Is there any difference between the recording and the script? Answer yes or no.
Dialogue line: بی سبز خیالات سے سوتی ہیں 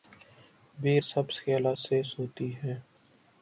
no